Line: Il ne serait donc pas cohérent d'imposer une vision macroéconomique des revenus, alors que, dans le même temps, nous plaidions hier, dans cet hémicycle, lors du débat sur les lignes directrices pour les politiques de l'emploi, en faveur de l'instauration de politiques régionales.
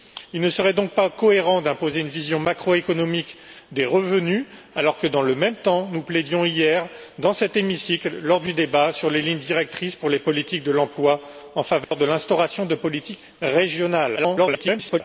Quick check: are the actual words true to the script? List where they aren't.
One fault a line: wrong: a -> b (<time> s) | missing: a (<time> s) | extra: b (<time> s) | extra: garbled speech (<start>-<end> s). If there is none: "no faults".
extra: garbled speech (14.2-15.0 s)